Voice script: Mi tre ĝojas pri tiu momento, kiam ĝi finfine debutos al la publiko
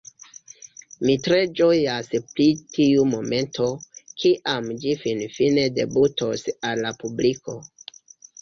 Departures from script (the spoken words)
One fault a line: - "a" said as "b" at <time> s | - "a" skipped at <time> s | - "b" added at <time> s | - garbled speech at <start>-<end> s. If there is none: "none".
none